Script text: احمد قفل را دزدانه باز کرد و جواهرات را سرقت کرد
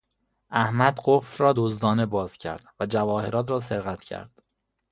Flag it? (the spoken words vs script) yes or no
no